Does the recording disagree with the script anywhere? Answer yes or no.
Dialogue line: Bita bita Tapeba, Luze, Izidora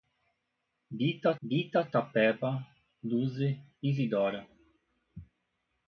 no